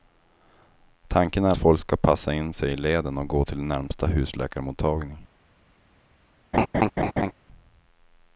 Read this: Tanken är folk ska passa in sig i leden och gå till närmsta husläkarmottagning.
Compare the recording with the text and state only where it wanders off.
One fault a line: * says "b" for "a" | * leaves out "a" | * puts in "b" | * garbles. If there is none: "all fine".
all fine